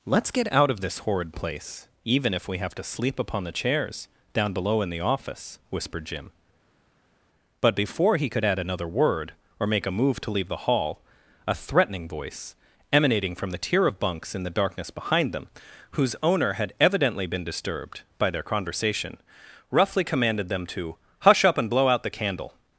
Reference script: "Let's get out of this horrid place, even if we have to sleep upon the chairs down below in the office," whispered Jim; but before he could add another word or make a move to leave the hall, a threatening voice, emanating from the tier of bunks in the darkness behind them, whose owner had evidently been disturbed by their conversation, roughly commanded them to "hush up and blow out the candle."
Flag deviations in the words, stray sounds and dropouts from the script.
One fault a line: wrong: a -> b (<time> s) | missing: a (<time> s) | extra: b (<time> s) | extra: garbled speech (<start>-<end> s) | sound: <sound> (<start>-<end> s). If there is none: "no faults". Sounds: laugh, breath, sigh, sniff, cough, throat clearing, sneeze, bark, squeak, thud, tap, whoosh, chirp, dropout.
no faults